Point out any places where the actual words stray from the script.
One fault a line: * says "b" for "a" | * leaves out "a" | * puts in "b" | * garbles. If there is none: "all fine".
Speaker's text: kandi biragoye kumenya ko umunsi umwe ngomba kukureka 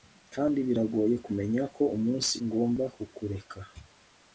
* leaves out "umwe"